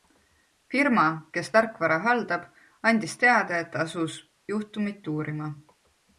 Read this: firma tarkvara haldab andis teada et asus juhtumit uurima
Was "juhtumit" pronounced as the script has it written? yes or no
yes